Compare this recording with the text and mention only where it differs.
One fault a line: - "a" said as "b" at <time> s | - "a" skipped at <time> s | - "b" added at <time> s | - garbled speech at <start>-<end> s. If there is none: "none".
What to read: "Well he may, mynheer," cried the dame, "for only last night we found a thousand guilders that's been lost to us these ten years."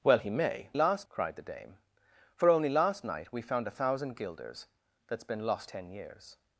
- "mynheer" said as "last" at 0.7 s
- "to us these" skipped at 5.7 s